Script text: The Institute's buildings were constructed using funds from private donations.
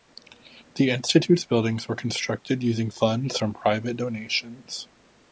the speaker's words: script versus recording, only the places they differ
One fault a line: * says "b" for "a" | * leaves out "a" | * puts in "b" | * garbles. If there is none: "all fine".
all fine